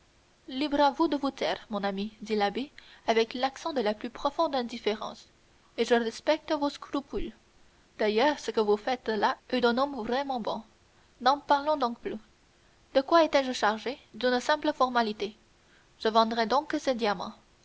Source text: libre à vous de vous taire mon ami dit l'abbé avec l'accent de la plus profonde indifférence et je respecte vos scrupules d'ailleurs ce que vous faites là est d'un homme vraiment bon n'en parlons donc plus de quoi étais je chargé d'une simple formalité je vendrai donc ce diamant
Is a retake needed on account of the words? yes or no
no